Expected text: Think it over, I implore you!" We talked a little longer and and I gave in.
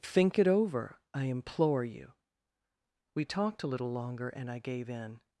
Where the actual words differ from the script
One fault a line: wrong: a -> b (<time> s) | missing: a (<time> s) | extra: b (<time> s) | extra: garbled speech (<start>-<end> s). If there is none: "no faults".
missing: and (4.5 s)